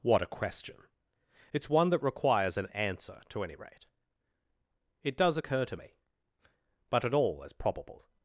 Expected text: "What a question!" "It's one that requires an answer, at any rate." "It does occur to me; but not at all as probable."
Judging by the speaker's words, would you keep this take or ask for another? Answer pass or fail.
fail